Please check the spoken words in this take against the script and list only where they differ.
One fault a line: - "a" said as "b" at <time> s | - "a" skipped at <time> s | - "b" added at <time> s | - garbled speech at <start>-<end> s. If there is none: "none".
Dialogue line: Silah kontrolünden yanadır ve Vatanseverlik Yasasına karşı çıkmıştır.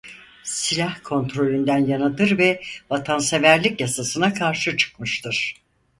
none